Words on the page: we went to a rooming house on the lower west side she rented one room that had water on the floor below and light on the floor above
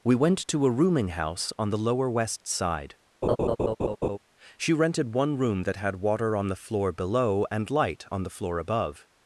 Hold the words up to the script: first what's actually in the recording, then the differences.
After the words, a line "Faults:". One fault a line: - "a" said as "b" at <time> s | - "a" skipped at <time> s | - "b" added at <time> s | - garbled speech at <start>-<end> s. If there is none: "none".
we went to a rooming house on the lower west side she rented one room that had water on the floor below and light on the floor above
Faults:
none